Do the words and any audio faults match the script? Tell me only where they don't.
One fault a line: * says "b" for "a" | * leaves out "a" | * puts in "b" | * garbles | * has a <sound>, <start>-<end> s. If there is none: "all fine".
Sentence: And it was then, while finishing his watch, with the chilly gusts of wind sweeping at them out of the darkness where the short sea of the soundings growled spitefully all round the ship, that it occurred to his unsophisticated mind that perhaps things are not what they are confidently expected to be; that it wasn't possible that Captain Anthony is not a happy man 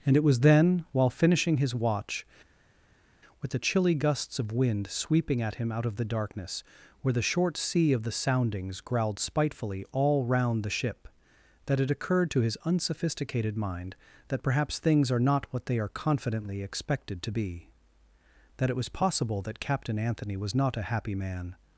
* says "him" for "them"
* says "was" for "wasn't"
* says "was" for "is"